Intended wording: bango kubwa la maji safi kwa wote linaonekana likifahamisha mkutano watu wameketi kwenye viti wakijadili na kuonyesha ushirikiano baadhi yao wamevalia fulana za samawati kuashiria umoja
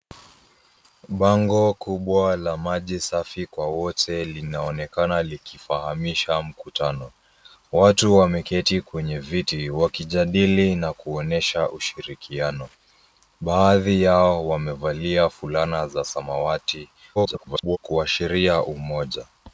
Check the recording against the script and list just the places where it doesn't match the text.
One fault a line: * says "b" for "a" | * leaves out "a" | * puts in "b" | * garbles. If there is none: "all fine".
* garbles